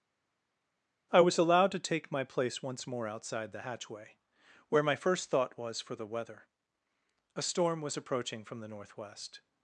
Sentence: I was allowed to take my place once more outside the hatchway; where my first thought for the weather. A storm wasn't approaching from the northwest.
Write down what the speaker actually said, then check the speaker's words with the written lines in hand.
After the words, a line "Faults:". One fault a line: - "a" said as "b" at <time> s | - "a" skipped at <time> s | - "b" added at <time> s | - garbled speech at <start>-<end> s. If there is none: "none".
I was allowed to take my place once more outside the hatchway; where my first thought was for the weather. A storm was approaching from the northwest.
Faults:
- "was" added at 5.6 s
- "wasn't" said as "was" at 7.8 s